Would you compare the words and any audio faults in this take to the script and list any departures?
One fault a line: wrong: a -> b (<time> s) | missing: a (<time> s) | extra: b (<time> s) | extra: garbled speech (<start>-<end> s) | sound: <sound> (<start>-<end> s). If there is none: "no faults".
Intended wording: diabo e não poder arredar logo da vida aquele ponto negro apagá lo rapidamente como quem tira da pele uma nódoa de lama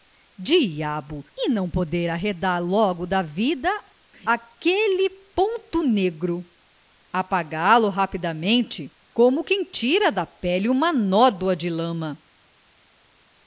no faults